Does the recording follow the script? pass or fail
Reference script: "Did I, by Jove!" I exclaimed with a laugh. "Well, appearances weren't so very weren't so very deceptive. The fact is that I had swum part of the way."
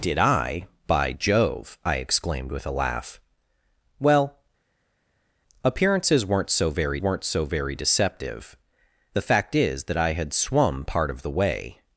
pass